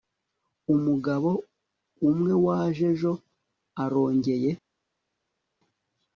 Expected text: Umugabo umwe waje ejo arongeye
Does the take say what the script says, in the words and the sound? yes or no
yes